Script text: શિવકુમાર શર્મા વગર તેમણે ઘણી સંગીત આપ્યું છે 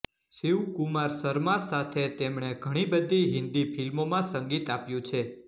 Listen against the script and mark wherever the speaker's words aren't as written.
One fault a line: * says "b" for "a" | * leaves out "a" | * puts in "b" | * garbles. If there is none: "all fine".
* says "સાથે" for "વગર"
* puts in "બધી હિન્દી ફિલ્મોમાં"